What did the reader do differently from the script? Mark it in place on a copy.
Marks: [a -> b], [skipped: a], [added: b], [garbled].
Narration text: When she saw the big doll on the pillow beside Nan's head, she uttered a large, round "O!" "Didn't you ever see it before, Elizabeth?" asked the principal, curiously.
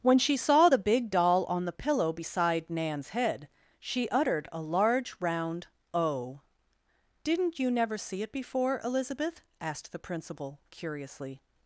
When she saw the big doll on the pillow beside Nan's head, she uttered a large, round "O!" "Didn't you [ever -> never] see it before, Elizabeth?" asked the principal, curiously.